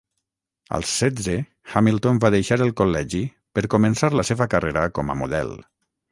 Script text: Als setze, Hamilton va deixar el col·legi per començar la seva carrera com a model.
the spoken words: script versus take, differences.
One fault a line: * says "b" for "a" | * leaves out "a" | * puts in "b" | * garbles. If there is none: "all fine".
all fine